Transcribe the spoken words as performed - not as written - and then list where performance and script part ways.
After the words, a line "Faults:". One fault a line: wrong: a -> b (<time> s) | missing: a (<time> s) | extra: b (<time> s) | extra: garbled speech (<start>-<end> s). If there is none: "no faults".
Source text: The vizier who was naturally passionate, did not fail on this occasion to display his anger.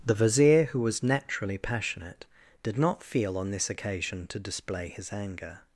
The vizier who was naturally passionate, did not feel on this occasion to display his anger.
Faults:
wrong: fail -> feel (3.0 s)